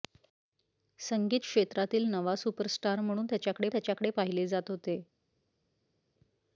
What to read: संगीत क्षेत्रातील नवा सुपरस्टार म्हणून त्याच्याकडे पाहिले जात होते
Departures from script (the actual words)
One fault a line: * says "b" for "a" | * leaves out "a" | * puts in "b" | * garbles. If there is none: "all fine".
* puts in "त्याच्याकडे"